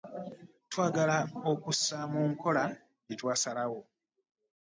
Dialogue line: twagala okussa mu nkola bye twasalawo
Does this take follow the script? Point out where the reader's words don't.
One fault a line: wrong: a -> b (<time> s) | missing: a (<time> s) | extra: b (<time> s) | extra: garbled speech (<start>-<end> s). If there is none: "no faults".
no faults